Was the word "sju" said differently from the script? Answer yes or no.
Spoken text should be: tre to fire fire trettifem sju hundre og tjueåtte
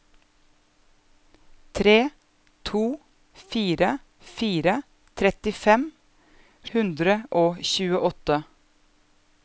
yes